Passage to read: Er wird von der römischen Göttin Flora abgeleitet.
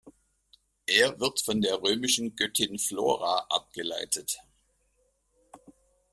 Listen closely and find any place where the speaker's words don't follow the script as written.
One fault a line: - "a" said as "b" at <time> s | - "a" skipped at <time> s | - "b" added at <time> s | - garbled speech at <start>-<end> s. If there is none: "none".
none